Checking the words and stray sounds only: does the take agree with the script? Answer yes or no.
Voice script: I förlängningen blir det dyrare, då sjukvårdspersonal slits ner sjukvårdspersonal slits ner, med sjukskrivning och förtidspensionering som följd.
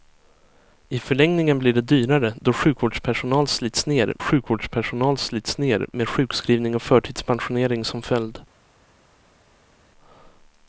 yes